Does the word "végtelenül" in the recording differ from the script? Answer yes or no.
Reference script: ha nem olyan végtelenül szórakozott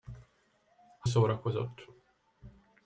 yes